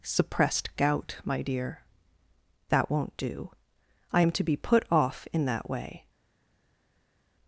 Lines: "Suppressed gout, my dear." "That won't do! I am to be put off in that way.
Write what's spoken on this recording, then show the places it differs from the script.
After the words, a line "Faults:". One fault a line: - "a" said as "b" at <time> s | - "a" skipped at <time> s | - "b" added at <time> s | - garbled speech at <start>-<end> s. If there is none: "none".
"Suppressed gout, my dear." "That won't do! I am to be put off in that way.
Faults:
none